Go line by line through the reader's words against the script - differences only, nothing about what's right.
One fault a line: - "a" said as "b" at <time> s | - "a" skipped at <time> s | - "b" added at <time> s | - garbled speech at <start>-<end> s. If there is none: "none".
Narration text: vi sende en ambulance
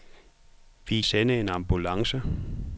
none